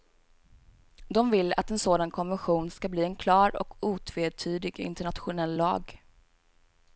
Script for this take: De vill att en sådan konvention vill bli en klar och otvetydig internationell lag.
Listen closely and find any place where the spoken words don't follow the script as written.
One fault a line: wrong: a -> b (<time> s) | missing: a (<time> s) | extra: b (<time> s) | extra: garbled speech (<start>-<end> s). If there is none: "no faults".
wrong: vill -> ska (2.7 s)